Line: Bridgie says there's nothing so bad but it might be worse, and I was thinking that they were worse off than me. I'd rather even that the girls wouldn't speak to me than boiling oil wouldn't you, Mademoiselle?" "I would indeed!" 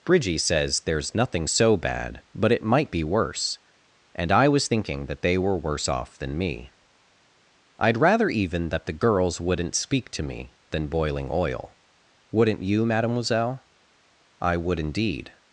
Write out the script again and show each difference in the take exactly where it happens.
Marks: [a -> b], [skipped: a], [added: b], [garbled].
Bridgie says there's nothing so bad but it might be worse, and I was thinking that they were worse off than me. I'd rather even that the girls wouldn't speak to me than boiling oil wouldn't you, Mademoiselle?" "I would indeed!"